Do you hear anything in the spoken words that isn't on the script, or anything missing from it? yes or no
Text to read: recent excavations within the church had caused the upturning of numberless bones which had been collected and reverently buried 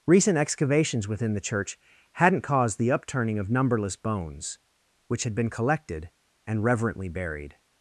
yes